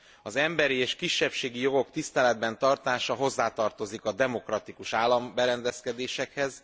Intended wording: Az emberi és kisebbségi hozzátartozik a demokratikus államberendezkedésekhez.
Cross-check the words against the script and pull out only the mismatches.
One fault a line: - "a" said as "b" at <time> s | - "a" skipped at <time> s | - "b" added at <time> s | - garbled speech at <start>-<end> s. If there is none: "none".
- "jogok tiszteletben tartása" added at 1.6 s